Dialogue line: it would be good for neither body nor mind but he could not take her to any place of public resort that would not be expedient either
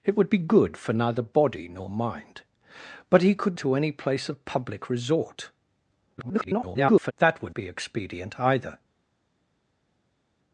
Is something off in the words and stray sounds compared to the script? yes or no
yes